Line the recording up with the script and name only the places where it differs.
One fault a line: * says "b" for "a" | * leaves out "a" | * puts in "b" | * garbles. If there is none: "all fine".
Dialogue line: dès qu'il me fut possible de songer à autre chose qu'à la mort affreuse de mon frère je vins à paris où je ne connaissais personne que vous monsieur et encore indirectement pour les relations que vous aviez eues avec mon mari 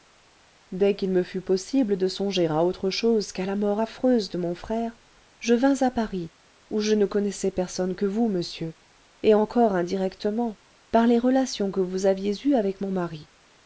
* says "par" for "pour"